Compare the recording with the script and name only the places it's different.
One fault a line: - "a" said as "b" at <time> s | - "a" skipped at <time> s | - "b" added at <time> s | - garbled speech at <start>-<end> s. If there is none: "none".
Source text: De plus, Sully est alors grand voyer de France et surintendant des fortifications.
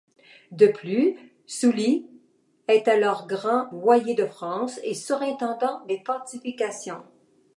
none